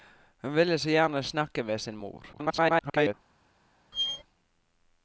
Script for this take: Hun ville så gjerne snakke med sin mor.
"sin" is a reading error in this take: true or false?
false